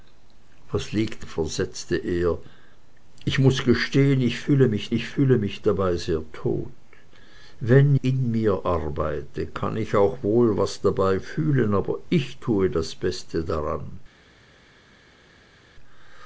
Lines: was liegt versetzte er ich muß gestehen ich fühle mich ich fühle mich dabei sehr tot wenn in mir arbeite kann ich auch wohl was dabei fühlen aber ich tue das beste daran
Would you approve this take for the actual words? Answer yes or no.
yes